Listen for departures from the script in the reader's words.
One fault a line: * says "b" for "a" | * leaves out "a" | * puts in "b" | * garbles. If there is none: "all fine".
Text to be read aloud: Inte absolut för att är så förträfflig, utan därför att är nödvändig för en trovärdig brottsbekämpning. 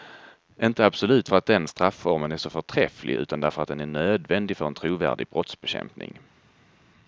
* puts in "den strafformen"
* puts in "den"